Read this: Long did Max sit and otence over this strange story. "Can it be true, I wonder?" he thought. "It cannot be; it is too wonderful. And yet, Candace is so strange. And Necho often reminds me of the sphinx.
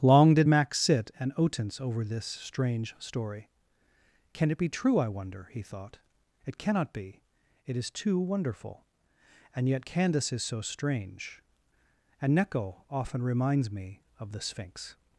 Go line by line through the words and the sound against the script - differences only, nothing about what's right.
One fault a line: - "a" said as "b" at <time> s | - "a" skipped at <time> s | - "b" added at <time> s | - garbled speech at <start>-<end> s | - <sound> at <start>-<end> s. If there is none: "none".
none